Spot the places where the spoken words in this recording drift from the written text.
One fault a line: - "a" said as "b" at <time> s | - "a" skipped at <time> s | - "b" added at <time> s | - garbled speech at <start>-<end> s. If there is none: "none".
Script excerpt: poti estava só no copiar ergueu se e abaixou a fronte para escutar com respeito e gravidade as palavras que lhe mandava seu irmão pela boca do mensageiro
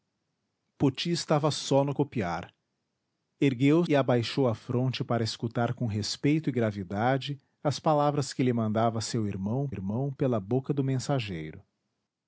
- "se" skipped at 3.8 s
- "irmão" added at 9.7 s